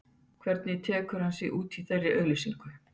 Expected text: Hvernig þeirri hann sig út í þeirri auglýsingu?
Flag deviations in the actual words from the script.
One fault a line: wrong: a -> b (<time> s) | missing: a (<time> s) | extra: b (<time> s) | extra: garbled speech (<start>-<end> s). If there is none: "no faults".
wrong: þeirri -> tekur (0.9 s)